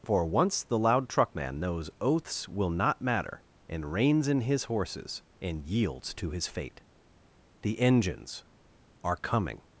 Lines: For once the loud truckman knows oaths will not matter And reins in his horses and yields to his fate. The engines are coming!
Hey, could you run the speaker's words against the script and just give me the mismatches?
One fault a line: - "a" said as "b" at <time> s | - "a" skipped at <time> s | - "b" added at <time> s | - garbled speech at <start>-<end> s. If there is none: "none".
none